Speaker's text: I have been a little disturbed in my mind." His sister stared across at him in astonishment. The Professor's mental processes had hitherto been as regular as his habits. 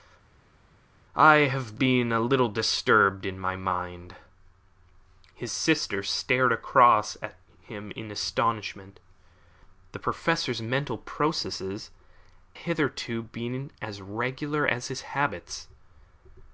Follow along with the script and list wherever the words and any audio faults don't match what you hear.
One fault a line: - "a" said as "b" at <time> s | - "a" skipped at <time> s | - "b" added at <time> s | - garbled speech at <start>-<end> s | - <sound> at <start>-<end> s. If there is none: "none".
- "had" skipped at 11.9 s